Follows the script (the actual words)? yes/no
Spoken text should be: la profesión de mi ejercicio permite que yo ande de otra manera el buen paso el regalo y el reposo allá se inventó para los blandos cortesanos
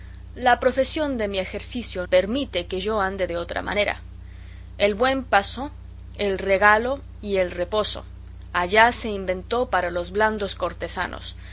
yes